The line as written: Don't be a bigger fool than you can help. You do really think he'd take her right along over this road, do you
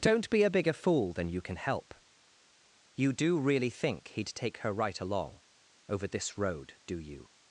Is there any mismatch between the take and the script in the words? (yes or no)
no